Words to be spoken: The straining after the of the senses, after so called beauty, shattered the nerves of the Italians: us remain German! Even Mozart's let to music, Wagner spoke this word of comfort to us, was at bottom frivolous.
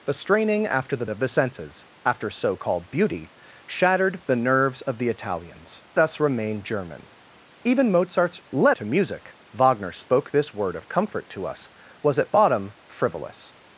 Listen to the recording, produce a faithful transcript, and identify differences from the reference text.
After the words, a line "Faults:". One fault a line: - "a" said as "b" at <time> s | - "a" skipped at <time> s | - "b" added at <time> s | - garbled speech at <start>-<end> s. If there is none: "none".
The straining after the of the senses, after so called beauty, shattered the nerves of the Italians: us remain German! Even Mozart's let to music, Wagner spoke this word of comfort to us, was at bottom frivolous.
Faults:
none